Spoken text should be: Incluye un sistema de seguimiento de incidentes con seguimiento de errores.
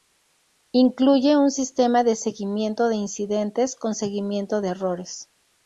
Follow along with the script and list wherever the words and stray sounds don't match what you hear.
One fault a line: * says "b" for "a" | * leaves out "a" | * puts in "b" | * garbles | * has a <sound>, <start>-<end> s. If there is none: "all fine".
all fine